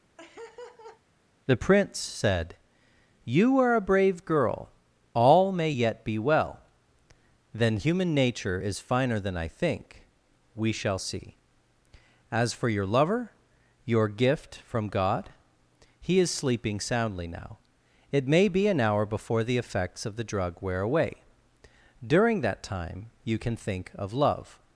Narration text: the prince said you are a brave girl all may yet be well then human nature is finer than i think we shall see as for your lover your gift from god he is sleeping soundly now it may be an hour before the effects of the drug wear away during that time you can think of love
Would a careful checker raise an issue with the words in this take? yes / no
no